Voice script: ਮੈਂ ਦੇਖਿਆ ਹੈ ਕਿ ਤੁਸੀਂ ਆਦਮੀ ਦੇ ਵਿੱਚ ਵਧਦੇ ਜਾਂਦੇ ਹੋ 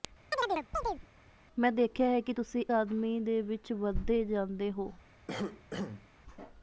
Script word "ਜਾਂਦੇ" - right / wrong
right